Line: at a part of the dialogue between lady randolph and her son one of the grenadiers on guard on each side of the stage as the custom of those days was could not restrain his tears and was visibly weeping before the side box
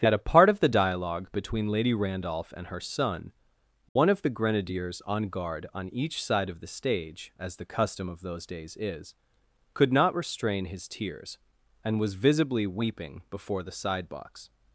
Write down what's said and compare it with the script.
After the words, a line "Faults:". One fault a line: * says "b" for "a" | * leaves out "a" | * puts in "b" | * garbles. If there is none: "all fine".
at a part of the dialogue between lady randolph and her son one of the grenadiers on guard on each side of the stage as the custom of those days is could not restrain his tears and was visibly weeping before the side box
Faults:
* says "is" for "was"